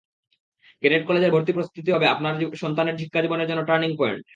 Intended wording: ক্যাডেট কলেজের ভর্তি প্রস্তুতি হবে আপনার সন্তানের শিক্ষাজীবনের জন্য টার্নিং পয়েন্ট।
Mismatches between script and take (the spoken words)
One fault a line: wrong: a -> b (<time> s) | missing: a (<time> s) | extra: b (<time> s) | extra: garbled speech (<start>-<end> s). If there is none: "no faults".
no faults